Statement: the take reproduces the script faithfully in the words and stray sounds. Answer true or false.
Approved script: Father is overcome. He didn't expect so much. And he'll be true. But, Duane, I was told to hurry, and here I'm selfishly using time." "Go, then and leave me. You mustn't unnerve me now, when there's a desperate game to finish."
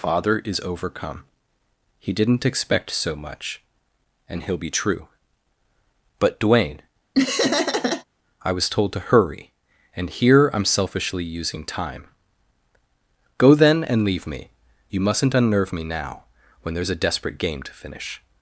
false